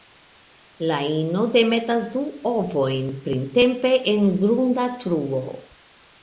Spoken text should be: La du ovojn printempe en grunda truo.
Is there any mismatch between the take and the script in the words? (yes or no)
yes